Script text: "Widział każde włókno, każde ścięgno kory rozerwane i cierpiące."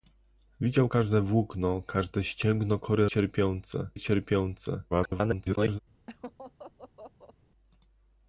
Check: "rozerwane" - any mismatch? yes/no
yes